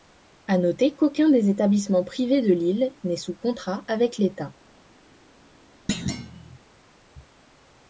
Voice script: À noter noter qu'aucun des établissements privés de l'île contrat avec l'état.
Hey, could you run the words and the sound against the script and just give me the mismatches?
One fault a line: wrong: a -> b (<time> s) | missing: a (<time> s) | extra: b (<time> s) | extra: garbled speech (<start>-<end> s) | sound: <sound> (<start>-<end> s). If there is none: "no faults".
missing: noter (0.9 s)
extra: n'est sous (3.0 s)
sound: thud (5.9-6.6 s)